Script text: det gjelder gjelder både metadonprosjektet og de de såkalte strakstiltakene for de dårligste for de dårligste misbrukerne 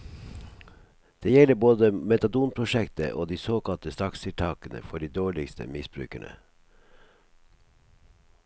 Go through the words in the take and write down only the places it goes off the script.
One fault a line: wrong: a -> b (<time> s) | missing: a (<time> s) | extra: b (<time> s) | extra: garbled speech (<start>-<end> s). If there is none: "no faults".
missing: gjelder (1.5 s)
missing: de (3.4 s)
missing: for de dårligste (5.7 s)